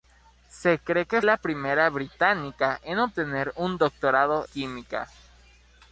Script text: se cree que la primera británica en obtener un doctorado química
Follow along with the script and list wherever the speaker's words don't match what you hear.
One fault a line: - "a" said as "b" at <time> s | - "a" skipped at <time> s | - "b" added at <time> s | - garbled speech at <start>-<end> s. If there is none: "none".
none